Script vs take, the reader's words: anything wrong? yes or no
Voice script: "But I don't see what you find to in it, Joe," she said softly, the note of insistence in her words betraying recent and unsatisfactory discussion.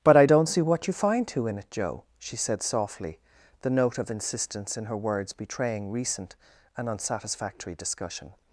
no